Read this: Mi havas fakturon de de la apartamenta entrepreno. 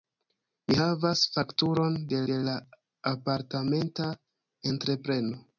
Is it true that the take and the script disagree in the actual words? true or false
false